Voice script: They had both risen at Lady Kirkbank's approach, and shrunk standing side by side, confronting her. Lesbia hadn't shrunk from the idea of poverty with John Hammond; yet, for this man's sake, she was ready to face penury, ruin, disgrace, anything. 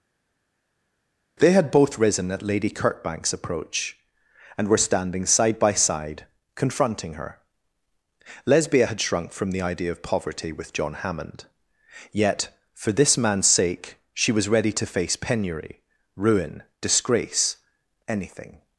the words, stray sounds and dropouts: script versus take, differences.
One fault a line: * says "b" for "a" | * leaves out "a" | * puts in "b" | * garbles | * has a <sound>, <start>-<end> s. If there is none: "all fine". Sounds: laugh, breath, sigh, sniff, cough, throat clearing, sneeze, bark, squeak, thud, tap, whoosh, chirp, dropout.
* says "were" for "shrunk"
* says "had" for "hadn't"